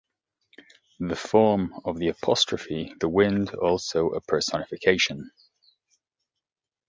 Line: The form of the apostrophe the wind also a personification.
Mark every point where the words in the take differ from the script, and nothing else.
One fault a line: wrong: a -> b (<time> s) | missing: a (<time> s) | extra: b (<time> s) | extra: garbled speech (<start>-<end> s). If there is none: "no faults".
no faults